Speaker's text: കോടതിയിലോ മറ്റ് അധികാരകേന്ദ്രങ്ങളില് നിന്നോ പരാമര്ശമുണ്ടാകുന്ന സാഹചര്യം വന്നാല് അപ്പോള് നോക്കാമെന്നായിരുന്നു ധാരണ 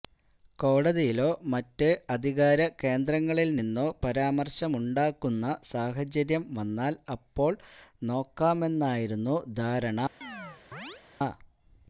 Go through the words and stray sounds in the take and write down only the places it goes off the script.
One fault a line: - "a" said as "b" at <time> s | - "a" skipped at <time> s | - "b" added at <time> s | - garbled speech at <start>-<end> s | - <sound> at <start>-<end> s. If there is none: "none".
- chirp at 10.2-11.0 s